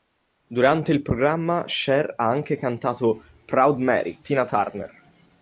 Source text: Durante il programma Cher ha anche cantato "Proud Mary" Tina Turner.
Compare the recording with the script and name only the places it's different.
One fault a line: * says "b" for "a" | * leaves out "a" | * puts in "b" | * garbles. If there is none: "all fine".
all fine